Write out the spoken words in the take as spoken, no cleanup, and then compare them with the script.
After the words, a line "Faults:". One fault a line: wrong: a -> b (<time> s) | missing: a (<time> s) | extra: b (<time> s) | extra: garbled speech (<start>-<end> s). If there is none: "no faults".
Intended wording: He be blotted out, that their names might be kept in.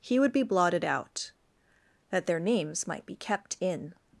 He would be blotted out, that their names might be kept in.
Faults:
extra: would (0.2 s)